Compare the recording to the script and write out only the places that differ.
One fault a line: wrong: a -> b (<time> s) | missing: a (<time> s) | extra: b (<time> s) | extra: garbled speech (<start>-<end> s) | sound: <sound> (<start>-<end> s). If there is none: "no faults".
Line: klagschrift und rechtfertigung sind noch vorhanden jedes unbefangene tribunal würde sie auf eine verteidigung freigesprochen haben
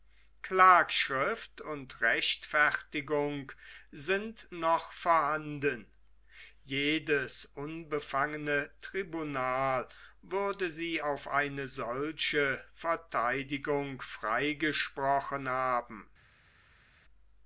extra: solche (11.7 s)